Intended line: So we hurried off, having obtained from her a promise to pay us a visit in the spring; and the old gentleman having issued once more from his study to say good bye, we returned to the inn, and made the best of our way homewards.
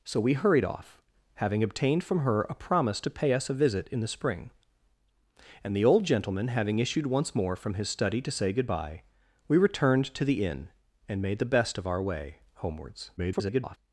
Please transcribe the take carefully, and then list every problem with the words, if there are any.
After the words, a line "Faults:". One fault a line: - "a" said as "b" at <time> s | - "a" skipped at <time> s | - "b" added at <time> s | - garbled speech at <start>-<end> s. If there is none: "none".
So we hurried off, having obtained from her a promise to pay us a visit in the spring; and the old gentleman having issued once more from his study to say good bye, we returned to the inn, and made the best of our way homewards. [garbled]
Faults:
- garbled speech at 13.2-13.8 s